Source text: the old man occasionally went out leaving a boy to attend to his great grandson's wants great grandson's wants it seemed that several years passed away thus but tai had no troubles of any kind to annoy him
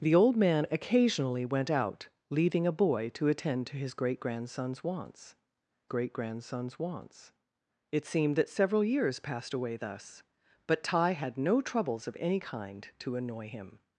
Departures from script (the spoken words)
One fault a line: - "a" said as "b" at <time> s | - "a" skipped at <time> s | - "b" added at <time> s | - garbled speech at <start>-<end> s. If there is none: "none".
none